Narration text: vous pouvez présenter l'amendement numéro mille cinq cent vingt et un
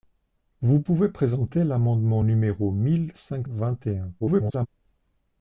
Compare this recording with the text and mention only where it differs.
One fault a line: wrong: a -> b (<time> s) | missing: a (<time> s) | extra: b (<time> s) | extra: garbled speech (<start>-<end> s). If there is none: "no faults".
missing: cent (3.5 s)
extra: garbled speech (4.2-4.7 s)